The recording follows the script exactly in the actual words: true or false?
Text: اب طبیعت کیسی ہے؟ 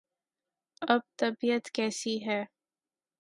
true